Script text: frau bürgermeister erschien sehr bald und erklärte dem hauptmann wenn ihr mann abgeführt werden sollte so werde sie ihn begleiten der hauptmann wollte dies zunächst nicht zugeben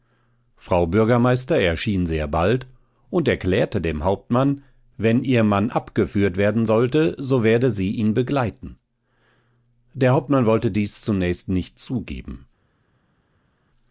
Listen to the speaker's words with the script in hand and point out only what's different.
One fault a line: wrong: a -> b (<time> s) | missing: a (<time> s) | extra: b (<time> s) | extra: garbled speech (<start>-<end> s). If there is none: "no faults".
no faults